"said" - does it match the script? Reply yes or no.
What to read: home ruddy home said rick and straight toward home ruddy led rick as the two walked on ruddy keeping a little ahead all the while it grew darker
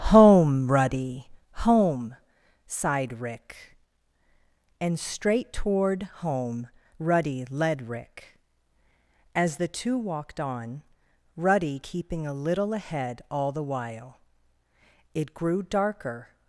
no